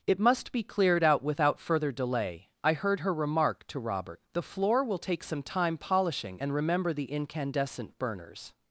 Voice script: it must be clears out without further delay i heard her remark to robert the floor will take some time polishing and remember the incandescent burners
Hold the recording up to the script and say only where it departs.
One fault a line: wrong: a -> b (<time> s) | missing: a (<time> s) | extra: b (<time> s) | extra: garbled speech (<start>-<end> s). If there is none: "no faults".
wrong: clears -> cleared (0.6 s)